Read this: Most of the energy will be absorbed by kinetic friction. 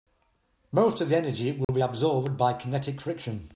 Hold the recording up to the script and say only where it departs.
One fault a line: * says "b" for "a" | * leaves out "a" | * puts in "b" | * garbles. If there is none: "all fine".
all fine